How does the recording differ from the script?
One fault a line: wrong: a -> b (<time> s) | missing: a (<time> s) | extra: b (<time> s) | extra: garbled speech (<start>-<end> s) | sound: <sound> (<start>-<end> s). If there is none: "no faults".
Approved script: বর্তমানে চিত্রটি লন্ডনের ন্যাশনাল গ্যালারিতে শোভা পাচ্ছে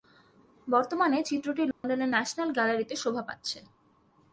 sound: dropout (1.7-1.8 s)